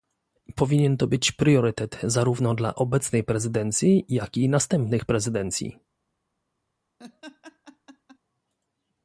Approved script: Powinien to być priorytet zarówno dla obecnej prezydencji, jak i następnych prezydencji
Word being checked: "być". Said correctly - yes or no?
yes